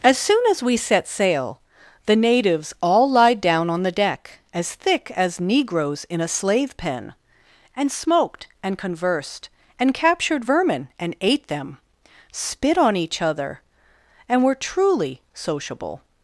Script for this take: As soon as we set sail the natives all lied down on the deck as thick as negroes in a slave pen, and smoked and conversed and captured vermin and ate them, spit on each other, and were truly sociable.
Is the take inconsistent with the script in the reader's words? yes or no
no